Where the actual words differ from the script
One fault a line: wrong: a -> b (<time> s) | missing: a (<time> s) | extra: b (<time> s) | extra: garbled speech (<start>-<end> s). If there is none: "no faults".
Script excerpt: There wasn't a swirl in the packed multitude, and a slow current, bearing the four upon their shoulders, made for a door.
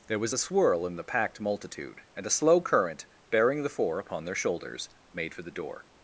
wrong: wasn't -> was (0.2 s)
wrong: a -> the (5.4 s)